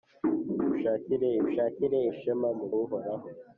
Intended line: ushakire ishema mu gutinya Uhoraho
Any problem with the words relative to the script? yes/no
yes